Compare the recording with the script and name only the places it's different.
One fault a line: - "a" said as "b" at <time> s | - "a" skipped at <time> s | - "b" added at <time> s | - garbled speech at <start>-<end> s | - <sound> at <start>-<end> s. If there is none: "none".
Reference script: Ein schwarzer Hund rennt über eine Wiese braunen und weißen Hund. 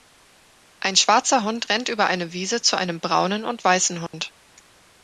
- "zu einem" added at 2.6 s
- dropout at 4.1-4.1 s